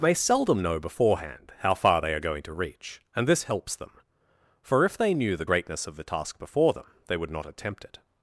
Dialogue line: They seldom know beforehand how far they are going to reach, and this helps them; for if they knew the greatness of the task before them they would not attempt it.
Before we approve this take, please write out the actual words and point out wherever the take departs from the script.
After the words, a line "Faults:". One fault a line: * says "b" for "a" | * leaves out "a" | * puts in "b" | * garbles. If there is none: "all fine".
May seldom know beforehand how far they are going to reach, and this helps them; for if they knew the greatness of the task before them they would not attempt it.
Faults:
* says "May" for "They"